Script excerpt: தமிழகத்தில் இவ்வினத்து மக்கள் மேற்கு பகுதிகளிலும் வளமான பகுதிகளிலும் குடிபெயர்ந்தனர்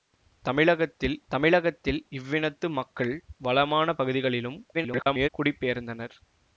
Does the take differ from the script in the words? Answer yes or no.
yes